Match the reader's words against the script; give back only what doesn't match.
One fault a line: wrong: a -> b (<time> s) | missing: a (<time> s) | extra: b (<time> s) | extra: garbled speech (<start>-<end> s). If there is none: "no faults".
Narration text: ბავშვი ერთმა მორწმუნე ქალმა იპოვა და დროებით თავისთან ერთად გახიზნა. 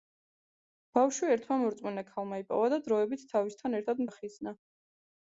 no faults